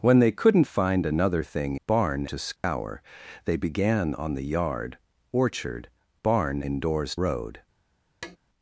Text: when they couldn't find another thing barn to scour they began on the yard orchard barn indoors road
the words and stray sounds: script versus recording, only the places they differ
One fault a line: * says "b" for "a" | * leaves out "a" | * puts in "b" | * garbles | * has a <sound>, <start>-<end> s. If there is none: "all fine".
* has a dropout, 2.6-2.6 s
* has a tap, 8.2-8.4 s